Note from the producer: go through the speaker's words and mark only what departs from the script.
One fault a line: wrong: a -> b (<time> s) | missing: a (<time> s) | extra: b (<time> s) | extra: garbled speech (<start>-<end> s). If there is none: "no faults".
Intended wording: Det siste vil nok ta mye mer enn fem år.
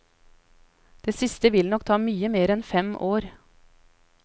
no faults